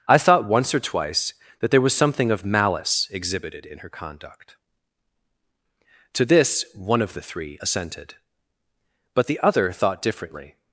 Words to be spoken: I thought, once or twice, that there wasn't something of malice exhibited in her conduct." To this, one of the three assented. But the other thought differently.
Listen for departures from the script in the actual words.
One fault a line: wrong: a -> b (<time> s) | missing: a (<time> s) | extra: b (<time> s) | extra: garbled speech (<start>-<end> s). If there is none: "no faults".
wrong: wasn't -> was (1.8 s)